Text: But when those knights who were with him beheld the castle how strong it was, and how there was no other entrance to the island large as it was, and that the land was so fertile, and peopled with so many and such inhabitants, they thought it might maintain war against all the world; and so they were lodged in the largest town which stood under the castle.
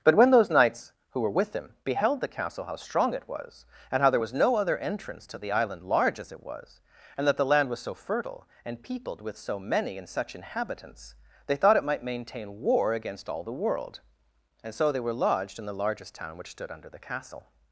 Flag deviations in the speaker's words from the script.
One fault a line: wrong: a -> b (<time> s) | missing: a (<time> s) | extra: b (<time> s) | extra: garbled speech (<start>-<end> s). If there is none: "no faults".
no faults